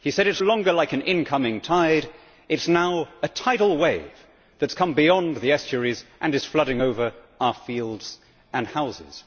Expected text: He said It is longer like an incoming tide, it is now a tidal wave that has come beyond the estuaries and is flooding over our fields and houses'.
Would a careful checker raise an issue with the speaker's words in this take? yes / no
no